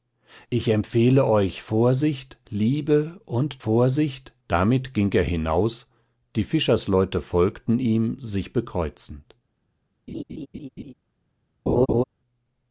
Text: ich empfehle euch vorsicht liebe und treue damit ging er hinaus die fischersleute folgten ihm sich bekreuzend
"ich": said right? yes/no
yes